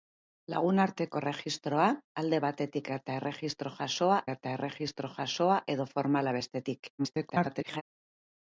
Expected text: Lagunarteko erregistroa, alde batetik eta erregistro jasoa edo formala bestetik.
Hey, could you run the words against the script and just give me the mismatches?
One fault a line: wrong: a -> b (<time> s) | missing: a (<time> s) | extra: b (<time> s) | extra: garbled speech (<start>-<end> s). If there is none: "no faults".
extra: eta erregistro jasoa (4.3 s)
extra: garbled speech (7.0-7.8 s)